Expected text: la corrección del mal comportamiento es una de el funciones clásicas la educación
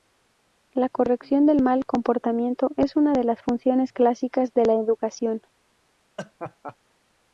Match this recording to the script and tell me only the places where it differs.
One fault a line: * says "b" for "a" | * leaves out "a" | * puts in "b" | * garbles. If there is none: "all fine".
* says "las" for "el"
* puts in "de"